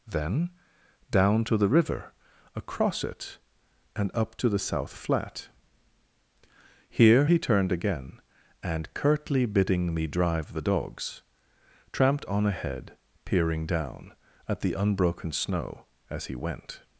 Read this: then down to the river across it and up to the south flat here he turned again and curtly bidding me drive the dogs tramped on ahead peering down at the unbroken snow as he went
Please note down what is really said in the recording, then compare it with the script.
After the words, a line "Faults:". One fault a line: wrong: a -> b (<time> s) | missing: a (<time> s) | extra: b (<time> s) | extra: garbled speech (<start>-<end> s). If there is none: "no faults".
then down to the river across it and up to the south flat here he turned again and curtly bidding me drive the dogs tramped on ahead peering down at the unbroken snow as he went
Faults:
no faults